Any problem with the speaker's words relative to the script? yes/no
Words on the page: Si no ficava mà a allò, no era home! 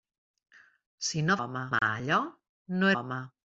yes